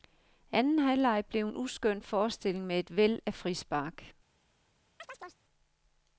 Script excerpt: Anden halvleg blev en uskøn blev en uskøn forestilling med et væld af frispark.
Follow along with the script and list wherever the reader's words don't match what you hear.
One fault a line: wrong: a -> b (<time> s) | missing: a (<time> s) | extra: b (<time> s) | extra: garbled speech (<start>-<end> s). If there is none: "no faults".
missing: blev en uskøn (2.0 s)